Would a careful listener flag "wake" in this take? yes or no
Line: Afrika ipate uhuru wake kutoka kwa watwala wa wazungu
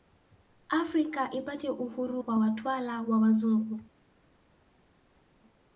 yes